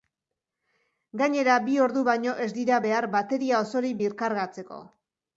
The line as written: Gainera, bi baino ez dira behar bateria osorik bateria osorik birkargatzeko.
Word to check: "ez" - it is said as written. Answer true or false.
true